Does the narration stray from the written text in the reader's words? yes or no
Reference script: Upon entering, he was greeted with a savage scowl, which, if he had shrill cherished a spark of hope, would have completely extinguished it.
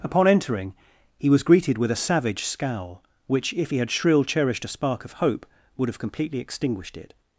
no